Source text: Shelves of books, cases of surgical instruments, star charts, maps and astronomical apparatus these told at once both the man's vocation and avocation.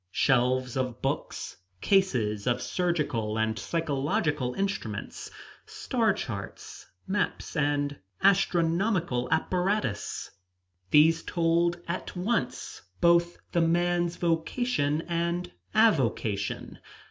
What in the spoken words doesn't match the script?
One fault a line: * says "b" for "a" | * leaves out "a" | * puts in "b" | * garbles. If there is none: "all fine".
* puts in "and psychological"